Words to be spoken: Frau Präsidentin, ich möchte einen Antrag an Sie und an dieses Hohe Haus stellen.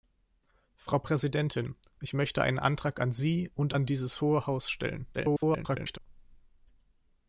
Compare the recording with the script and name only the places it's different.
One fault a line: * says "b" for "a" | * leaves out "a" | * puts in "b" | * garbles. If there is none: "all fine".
* garbles